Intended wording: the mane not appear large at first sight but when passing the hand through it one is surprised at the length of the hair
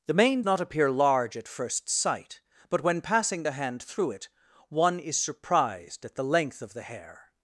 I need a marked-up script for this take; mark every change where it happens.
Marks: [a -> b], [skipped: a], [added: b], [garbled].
the mane not appear large at first sight but when passing the hand through it one is surprised at the length of the hair